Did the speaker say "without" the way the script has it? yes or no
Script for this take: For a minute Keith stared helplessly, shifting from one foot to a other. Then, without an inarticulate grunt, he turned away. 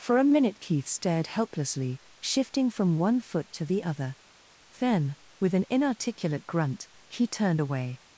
no